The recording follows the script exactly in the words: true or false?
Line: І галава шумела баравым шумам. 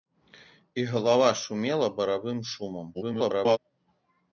false